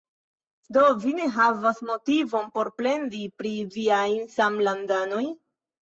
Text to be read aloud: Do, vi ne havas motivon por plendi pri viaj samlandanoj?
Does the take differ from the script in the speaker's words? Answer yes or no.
no